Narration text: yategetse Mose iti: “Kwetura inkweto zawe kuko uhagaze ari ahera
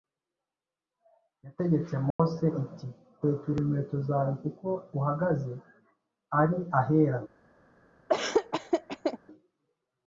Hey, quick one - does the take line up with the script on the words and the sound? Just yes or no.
no